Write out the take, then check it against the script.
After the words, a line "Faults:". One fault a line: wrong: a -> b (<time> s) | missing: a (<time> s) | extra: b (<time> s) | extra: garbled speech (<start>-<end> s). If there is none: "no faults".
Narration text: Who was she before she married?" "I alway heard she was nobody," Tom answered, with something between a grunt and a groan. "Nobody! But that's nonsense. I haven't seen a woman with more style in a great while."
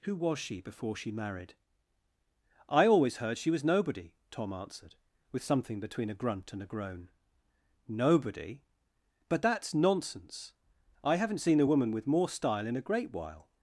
Who was she before she married?" "I always heard she was nobody," Tom answered, with something between a grunt and a groan. "Nobody! But that's nonsense. I haven't seen a woman with more style in a great while."
Faults:
wrong: alway -> always (2.9 s)